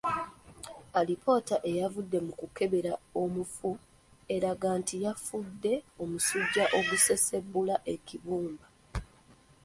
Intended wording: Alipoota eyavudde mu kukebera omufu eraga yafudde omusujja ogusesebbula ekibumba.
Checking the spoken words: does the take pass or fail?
fail